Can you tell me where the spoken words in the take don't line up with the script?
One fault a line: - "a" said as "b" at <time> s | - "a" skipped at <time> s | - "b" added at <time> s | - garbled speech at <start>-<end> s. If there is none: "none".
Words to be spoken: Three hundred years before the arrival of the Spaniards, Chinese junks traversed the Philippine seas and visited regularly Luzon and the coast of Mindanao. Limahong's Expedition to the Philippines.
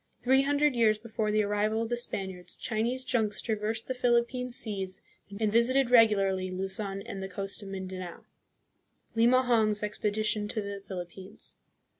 none